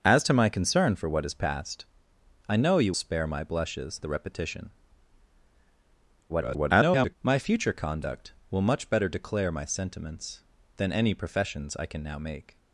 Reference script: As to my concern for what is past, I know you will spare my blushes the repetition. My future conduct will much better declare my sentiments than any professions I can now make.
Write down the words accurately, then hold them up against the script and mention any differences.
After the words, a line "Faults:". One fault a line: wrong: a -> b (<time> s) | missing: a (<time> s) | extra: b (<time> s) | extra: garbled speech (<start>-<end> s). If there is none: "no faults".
As to my concern for what is past, I know you spare my blushes the repetition. [garbled] My future conduct will much better declare my sentiments than any professions I can now make.
Faults:
missing: will (2.9 s)
extra: garbled speech (6.3-7.2 s)